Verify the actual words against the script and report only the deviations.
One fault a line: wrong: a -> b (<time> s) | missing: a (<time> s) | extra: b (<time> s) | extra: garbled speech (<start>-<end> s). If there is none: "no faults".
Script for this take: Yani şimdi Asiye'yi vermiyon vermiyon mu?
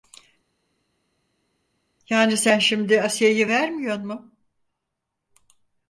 extra: sen (2.4 s)
missing: vermiyon (4.1 s)